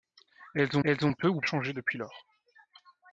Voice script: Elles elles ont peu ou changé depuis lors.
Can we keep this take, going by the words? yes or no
yes